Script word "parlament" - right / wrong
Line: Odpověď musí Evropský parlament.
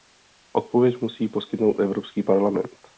right